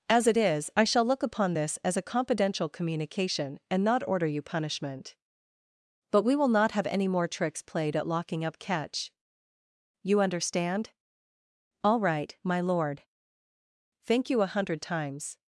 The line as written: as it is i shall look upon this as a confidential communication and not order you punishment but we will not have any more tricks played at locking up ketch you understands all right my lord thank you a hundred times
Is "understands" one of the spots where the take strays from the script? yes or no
yes